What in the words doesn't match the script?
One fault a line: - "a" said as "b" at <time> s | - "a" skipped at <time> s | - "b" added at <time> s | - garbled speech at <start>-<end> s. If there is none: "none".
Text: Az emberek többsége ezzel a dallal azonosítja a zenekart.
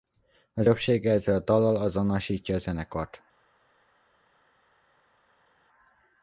- "emberek" skipped at 0.7 s